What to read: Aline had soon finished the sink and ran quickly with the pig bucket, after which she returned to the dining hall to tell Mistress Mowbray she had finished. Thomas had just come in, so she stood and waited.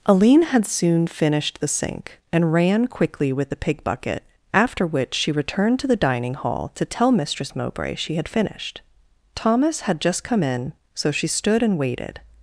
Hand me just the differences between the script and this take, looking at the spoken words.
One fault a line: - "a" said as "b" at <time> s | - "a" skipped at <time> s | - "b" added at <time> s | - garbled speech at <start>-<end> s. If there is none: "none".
none